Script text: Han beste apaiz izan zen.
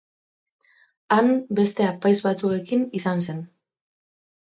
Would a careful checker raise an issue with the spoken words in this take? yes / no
yes